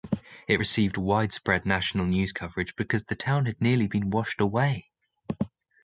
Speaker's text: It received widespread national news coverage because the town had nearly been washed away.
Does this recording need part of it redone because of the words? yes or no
no